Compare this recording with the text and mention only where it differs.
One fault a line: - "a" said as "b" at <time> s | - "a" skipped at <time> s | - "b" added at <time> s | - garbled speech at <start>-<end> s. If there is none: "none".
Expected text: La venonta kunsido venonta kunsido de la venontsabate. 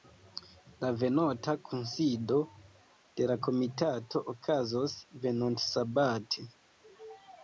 - "venonta kunsido de la" said as "de la komitato okazos" at 3.2 s